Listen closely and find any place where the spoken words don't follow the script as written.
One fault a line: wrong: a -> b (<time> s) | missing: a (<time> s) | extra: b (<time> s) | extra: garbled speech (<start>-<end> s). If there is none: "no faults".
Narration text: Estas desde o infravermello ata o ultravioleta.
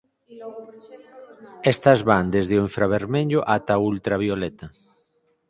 extra: van (2.1 s)